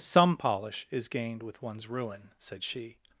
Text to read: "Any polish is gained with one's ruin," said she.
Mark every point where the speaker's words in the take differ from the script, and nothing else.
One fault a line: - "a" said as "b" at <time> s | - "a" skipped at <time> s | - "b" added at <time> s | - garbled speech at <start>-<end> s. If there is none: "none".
- "Any" said as "Some" at 0.0 s